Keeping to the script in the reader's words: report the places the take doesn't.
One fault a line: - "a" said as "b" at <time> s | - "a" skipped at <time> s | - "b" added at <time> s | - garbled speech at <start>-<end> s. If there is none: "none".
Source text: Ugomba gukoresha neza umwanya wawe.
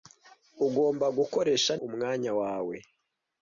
- "neza" skipped at 1.7 s